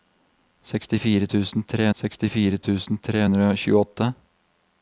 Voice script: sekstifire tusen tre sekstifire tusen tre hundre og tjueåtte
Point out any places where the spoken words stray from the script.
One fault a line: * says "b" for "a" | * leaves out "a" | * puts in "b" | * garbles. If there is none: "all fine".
all fine